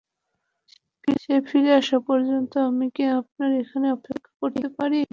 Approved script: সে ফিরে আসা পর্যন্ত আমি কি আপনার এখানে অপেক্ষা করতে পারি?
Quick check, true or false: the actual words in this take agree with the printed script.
true